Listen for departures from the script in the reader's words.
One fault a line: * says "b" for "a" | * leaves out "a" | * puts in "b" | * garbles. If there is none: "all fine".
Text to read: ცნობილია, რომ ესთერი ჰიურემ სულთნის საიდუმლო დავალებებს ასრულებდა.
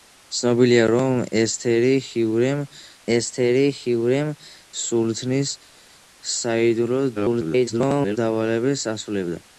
* puts in "ესთერი ჰიურემ"
* garbles